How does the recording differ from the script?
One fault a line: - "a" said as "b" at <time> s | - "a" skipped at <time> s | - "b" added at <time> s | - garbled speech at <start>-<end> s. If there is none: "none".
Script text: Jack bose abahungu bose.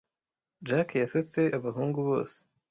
- "bose" said as "yasetse" at 1.0 s